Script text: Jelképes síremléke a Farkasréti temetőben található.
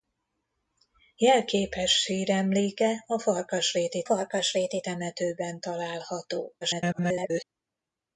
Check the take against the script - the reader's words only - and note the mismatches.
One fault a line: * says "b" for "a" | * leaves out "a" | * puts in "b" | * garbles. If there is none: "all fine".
* puts in "Farkasréti"
* garbles